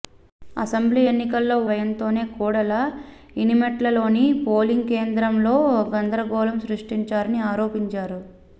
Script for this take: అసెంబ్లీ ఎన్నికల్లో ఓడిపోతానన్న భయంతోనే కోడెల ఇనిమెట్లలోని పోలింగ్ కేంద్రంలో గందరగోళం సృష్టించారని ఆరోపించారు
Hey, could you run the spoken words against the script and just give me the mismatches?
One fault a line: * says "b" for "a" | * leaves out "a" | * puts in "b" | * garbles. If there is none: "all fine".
* leaves out "ఓడిపోతానన్న"